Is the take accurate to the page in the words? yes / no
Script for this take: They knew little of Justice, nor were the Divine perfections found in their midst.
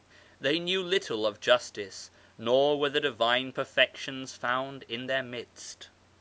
yes